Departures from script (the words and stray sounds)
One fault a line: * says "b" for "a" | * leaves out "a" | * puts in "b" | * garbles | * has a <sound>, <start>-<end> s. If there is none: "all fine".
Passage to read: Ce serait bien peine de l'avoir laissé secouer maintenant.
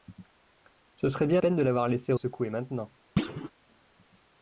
* has a thud, 3.2-3.5 s